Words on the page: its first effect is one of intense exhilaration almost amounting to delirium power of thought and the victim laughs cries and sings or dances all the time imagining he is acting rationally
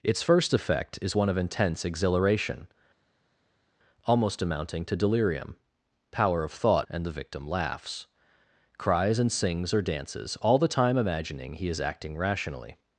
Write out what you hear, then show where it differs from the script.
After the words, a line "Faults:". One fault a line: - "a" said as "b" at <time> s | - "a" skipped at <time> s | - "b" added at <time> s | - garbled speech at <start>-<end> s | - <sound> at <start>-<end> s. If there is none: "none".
its first effect is one of intense exhilaration almost amounting to delirium power of thought and the victim laughs cries and sings or dances all the time imagining he is acting rationally
Faults:
none